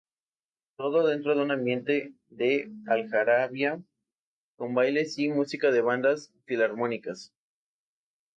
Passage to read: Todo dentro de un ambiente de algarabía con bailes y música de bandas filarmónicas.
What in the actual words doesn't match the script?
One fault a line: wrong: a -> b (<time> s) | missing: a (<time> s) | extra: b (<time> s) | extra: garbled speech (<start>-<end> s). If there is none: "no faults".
no faults